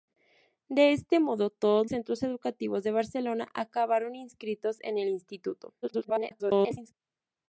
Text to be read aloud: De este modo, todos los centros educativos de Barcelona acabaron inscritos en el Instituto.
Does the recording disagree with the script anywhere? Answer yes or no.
yes